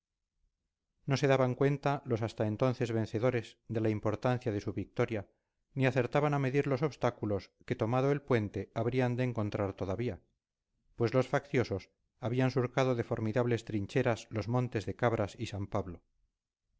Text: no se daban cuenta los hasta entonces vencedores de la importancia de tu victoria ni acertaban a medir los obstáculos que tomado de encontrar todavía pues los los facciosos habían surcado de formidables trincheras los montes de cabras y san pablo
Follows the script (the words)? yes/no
no